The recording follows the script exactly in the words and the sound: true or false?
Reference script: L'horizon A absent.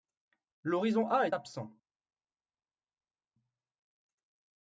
false